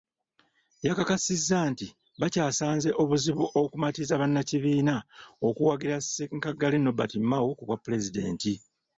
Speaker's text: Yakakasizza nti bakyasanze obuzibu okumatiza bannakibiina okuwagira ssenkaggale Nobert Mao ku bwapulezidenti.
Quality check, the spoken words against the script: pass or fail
pass